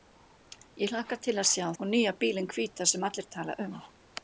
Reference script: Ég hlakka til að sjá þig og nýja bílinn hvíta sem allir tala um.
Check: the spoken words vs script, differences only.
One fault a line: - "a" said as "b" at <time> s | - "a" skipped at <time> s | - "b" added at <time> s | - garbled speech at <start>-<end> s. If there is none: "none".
- "þig" skipped at 1.7 s